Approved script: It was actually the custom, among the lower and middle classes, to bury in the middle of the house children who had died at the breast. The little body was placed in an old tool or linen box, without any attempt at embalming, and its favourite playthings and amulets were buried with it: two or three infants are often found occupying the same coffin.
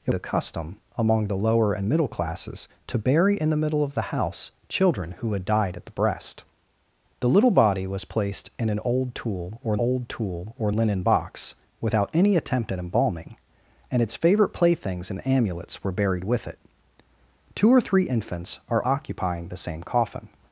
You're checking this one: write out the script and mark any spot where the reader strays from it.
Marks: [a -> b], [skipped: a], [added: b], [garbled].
It [skipped: was actually] the custom, among the lower and middle classes, to bury in the middle of the house children who had died at the breast. The little body was placed in an old tool or [added: old tool or] linen box, without any attempt at embalming, and its favourite playthings and amulets were buried with it: two or three infants are [skipped: often found] occupying the same coffin.